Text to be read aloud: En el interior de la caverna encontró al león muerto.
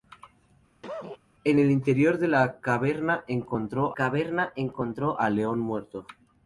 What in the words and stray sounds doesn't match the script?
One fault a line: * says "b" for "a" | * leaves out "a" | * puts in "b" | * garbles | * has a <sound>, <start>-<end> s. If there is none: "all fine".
* has a cough, 0.8-1.2 s
* puts in "caverna encontró"